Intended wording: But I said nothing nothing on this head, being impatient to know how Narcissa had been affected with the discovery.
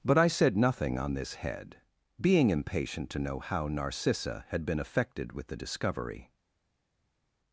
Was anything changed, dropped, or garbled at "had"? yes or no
no